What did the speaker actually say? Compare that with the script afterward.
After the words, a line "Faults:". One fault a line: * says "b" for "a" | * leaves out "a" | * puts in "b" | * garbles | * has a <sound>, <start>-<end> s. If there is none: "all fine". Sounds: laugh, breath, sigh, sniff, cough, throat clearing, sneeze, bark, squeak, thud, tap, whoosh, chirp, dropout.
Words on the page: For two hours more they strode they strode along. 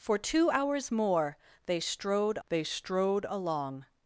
For two hours more they strode they strode along.
Faults:
all fine